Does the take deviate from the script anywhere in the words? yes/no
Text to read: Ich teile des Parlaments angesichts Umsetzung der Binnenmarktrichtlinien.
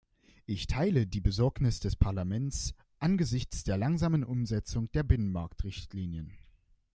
yes